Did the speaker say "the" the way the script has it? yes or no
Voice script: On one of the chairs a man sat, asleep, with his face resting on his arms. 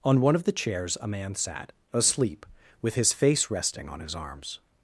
yes